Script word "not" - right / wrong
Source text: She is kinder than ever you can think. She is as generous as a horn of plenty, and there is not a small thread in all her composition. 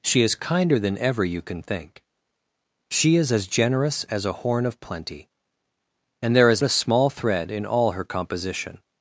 wrong